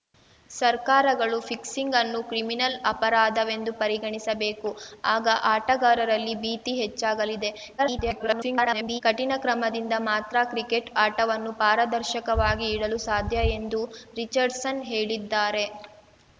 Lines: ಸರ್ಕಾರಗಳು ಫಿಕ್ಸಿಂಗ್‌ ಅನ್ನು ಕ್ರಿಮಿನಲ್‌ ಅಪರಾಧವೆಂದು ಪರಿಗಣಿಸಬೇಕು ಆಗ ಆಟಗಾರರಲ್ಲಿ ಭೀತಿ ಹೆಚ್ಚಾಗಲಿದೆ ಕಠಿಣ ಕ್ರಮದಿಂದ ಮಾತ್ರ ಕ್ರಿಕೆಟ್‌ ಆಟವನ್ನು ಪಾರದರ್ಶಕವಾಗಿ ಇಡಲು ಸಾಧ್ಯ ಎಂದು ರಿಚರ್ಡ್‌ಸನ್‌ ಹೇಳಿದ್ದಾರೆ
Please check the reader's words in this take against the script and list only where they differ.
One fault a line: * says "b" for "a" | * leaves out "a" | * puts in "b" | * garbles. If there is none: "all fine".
* garbles